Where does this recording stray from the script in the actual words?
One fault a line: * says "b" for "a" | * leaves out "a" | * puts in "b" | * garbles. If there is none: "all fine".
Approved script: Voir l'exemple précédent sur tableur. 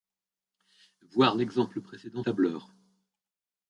* leaves out "sur"